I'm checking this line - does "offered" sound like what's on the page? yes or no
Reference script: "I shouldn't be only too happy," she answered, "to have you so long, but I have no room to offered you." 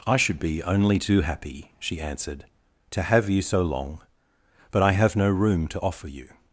no